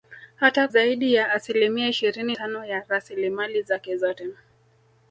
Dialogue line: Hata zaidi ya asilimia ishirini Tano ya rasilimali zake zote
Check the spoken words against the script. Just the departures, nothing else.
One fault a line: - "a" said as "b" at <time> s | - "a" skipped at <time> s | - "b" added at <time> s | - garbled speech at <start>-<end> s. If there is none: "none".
none